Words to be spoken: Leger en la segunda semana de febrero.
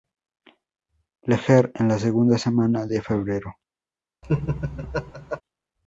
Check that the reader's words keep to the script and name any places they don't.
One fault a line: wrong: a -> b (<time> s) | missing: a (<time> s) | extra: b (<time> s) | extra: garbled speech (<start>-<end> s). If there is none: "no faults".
no faults